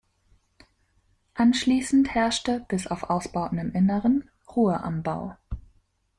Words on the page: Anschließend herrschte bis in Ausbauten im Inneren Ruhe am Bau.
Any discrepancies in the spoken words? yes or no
yes